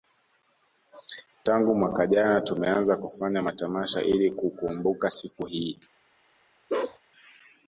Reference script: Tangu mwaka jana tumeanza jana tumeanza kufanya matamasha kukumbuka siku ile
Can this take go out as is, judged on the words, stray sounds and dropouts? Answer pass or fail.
fail